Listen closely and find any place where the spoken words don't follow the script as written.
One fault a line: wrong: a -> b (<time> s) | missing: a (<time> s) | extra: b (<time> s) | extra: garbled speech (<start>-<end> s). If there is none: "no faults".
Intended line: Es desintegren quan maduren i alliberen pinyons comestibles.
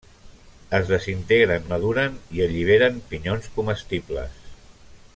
missing: quan (1.7 s)